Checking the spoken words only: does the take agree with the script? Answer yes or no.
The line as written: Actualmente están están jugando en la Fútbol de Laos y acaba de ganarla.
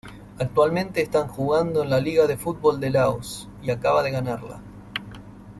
no